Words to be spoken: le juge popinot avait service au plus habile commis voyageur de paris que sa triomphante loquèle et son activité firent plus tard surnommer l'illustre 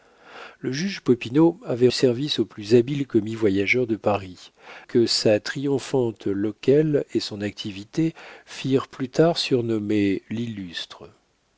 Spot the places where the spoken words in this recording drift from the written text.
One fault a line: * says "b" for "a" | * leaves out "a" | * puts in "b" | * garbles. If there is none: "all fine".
all fine